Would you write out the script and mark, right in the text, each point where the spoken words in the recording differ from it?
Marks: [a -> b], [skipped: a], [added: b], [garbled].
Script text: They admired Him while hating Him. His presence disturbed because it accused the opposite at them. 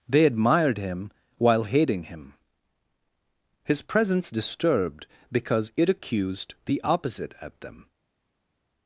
They admired Him while hating Him. His presence disturbed because it accused the opposite at them.